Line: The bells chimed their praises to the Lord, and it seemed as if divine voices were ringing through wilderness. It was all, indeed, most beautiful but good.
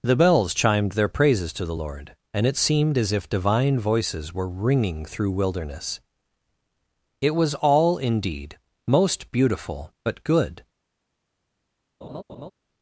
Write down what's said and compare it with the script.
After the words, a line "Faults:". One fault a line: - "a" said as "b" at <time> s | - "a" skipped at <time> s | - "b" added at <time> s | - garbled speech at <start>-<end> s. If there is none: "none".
The bells chimed their praises to the Lord, and it seemed as if divine voices were ringing through wilderness. It was all, indeed, most beautiful but good.
Faults:
none